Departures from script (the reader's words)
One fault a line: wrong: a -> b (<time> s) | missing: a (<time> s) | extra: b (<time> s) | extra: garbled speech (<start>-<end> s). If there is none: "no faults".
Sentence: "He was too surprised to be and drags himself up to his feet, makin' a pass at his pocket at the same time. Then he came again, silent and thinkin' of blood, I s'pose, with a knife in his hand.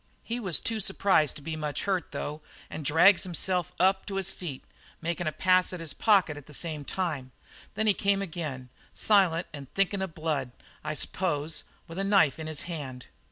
extra: much hurt though (1.6 s)